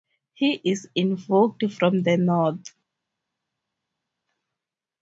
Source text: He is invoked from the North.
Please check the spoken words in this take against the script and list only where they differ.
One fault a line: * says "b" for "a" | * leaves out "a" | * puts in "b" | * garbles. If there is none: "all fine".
all fine